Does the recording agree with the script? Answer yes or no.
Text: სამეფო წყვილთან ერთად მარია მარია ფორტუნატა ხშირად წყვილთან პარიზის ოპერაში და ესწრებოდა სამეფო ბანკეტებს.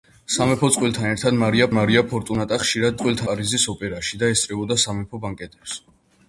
yes